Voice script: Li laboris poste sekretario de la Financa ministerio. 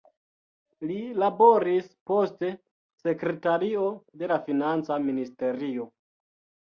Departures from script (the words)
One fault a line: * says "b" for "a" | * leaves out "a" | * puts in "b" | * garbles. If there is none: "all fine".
all fine